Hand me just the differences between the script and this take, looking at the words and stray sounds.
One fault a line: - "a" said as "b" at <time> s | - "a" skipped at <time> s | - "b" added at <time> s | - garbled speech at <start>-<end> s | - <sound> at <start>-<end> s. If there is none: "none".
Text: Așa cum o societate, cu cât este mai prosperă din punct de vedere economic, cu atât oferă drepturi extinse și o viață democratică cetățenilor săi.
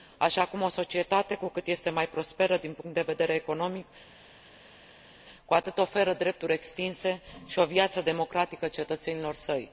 none